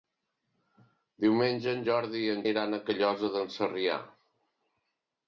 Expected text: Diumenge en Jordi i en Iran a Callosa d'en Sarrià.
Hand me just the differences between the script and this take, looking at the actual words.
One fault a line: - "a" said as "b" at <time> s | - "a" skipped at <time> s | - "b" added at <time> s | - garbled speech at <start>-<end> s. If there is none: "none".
none